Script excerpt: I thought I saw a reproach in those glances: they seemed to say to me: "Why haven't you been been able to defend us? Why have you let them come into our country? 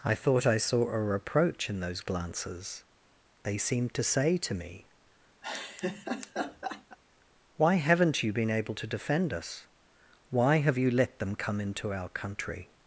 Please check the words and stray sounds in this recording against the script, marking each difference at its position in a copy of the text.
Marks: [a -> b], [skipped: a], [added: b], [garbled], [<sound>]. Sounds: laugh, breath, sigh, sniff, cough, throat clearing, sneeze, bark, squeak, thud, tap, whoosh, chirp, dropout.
I thought I saw a reproach in those glances: they seemed to say to me: [laugh] "Why haven't you been [skipped: been] able to defend us? Why have you let them come into our country?